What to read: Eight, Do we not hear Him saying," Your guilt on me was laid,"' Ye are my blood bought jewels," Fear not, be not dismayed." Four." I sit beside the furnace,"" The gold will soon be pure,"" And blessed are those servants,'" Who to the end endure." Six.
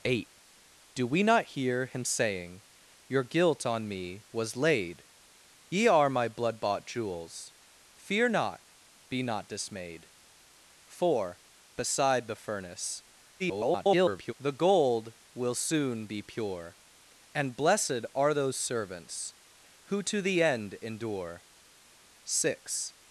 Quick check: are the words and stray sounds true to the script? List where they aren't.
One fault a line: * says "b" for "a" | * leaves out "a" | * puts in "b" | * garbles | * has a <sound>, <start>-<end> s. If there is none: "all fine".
* leaves out "I sit"
* garbles